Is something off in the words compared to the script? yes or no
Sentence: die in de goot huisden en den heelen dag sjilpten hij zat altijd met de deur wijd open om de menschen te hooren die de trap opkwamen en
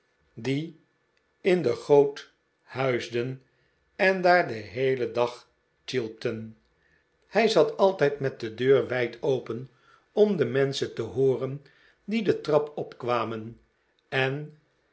yes